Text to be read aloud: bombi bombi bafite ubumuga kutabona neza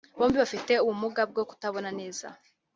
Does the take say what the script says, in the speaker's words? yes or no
no